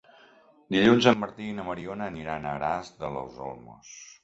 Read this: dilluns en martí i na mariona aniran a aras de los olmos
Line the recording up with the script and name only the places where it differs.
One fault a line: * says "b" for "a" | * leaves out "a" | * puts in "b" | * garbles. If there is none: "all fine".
all fine